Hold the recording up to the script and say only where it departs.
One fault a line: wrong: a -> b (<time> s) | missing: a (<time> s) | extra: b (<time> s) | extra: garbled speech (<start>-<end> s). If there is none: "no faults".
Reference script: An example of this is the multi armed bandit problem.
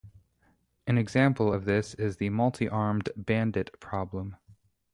no faults